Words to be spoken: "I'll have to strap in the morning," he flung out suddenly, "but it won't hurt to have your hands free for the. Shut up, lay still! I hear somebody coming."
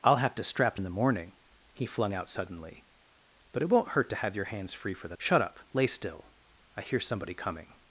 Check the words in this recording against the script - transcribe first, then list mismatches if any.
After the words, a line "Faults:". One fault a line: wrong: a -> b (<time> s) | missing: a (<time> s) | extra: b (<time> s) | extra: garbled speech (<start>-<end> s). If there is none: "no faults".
"I'll have to strap in the morning," he flung out suddenly, "but it won't hurt to have your hands free for the. Shut up, lay still! I hear somebody coming."
Faults:
no faults